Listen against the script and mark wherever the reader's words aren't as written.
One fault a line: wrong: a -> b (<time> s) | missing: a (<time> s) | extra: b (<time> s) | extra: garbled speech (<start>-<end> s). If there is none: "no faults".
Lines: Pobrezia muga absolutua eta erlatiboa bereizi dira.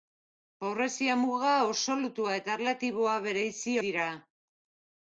no faults